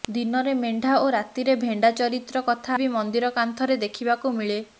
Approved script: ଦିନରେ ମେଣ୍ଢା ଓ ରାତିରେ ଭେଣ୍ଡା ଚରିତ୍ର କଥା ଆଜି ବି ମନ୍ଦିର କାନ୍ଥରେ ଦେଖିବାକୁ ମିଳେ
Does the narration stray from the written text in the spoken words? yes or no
yes